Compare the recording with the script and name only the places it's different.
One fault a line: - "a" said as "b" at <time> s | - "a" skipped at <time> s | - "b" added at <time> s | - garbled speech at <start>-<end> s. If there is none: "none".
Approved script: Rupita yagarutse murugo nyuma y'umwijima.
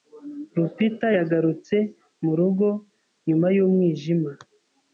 none